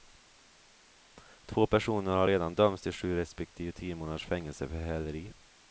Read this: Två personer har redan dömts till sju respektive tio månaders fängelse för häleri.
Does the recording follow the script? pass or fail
pass